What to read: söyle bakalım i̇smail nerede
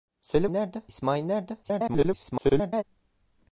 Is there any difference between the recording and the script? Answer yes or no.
yes